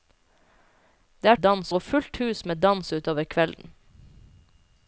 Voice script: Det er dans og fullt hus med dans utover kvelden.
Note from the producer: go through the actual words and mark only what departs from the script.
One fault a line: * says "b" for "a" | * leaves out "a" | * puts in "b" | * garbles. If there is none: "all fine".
all fine